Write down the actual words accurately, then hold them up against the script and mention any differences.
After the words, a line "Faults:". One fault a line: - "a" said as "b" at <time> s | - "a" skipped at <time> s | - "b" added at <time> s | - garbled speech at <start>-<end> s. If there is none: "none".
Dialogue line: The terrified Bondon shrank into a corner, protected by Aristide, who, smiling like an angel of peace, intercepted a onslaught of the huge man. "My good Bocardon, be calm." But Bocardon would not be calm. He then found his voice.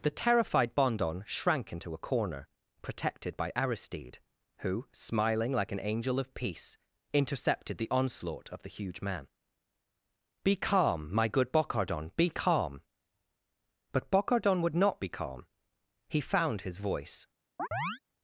The terrified Bondon shrank into a corner, protected by Aristide, who, smiling like an angel of peace, intercepted the onslaught of the huge man. "Be calm, my good Bocardon, be calm." But Bocardon would not be calm. He found his voice.
Faults:
- "a" said as "the" at 7.8 s
- "Be calm" added at 10.4 s
- "then" skipped at 16.2 s